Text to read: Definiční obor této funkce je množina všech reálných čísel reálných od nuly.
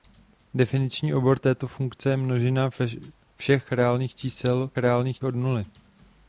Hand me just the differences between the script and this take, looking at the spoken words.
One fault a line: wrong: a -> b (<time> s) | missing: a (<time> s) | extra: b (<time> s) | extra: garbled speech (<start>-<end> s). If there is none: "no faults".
no faults